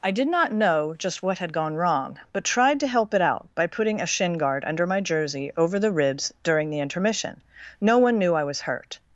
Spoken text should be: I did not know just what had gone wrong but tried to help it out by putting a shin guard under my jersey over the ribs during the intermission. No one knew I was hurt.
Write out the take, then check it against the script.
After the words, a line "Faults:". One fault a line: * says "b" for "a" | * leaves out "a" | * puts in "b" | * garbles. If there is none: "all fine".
I did not know just what had gone wrong but tried to help it out by putting a shin guard under my jersey over the ribs during the intermission. No one knew I was hurt.
Faults:
all fine